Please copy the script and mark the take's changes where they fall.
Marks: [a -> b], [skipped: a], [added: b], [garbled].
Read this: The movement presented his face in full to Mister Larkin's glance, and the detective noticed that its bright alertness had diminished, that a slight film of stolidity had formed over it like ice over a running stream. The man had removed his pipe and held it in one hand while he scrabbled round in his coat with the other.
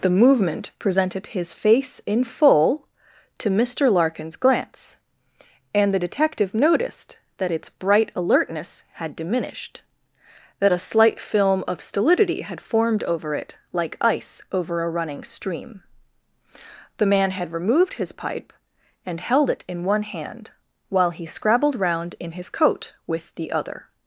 The movement presented his face in full to Mister Larkin's glance, and the detective noticed that its bright alertness had diminished, that a slight film of stolidity had formed over it like ice over a running stream. The man had removed his pipe and held it in one hand while he scrabbled round in his coat with the other.